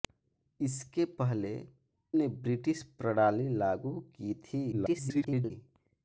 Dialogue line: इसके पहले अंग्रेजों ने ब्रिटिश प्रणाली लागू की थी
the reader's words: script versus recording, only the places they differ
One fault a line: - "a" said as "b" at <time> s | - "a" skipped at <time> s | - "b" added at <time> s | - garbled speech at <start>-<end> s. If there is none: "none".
- "अंग्रेजों" skipped at 1.5 s
- garbled speech at 4.7-5.5 s